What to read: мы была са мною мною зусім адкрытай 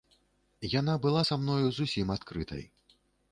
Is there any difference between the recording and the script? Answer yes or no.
yes